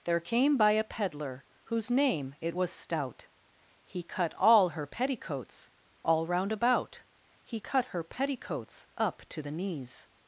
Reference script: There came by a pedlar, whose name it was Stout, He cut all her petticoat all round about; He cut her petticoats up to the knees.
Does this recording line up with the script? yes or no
no